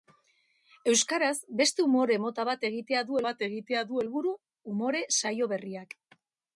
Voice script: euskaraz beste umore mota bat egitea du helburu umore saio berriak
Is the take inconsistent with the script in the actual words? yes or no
yes